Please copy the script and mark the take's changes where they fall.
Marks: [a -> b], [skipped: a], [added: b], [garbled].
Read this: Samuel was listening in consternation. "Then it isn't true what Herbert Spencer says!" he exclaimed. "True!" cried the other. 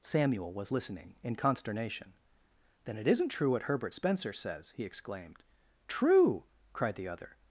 Samuel was listening in consternation. "Then it isn't true what Herbert Spencer says!" he exclaimed. "True!" cried the other.